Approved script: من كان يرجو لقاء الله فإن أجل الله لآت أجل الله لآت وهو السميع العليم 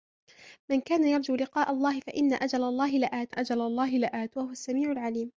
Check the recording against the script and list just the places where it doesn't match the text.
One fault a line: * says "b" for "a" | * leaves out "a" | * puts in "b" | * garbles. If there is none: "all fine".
all fine